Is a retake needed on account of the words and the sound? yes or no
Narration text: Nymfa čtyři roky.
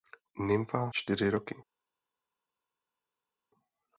no